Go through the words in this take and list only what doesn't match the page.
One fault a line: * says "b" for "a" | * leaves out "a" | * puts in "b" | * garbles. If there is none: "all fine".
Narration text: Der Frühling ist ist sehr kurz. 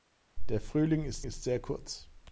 all fine